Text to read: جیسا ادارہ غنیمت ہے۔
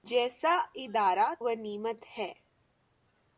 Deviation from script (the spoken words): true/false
false